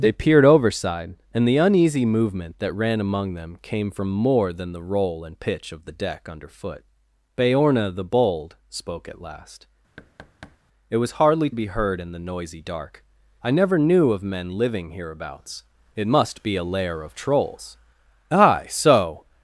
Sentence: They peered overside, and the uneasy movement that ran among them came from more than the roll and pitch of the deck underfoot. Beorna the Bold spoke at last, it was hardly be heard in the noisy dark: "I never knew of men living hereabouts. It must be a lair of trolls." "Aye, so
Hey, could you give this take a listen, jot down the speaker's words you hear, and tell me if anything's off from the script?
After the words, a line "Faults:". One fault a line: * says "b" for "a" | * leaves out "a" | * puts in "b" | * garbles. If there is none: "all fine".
They peered overside, and the uneasy movement that ran among them came from more than the roll and pitch of the deck underfoot. Beorna the Bold spoke at last, it was hardly be heard in the noisy dark: "I never knew of men living hereabouts. It must be a lair of trolls." "Aye, so
Faults:
all fine